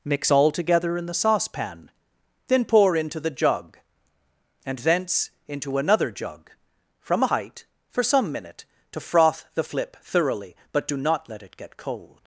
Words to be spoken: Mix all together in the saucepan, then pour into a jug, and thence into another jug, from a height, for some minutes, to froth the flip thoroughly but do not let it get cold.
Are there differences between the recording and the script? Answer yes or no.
yes